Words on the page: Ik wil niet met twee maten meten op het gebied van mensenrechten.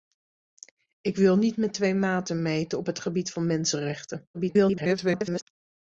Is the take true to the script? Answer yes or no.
no